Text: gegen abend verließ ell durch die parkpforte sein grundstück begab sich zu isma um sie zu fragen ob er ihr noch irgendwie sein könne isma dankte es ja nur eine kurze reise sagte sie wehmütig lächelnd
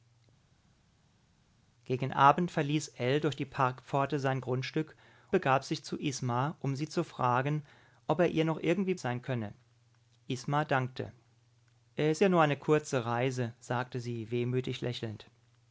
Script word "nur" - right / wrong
right